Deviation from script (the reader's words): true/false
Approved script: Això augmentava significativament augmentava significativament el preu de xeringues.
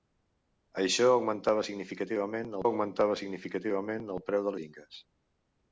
false